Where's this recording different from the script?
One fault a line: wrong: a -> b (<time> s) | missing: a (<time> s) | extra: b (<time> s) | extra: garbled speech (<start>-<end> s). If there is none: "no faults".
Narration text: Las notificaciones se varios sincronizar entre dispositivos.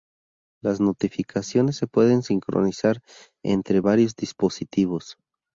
wrong: varios -> pueden (1.9 s)
extra: varios (3.8 s)